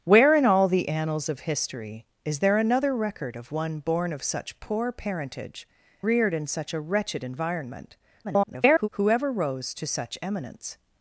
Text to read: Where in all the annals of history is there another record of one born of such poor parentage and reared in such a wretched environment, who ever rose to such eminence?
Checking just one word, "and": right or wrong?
wrong